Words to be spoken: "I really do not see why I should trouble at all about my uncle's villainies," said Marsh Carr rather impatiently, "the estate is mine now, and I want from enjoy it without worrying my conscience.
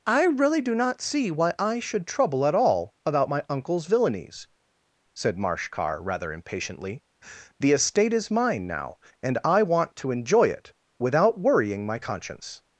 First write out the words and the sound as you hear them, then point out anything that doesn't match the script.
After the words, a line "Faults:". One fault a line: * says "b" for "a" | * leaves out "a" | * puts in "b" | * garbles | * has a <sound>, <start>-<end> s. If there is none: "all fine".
"I really do not see why I should trouble at all about my uncle's villainies," said Marsh Carr rather impatiently, "the estate is mine now, and I want to enjoy it without worrying my conscience.
Faults:
* says "to" for "from"